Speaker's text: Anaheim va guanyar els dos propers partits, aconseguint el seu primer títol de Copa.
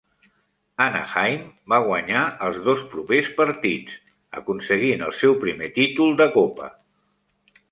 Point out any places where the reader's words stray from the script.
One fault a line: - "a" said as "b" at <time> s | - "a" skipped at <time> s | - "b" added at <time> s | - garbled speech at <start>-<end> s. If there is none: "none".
none